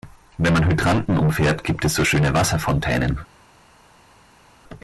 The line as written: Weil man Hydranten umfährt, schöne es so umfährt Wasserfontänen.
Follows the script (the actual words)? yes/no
no